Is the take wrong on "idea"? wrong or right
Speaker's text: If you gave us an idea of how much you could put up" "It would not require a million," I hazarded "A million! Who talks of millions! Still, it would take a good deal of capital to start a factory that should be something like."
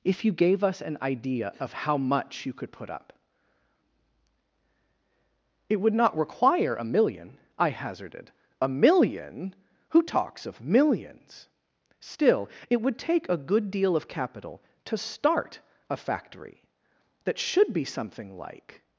right